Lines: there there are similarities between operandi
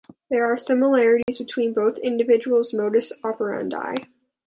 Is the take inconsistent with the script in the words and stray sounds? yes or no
yes